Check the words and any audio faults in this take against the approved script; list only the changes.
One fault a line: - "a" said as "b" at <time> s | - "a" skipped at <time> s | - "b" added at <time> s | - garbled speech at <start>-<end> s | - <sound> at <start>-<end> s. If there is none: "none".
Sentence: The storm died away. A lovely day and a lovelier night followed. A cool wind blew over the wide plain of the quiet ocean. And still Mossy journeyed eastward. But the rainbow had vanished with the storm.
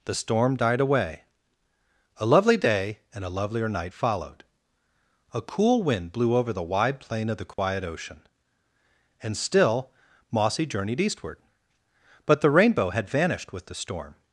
- dropout at 7.5-7.6 s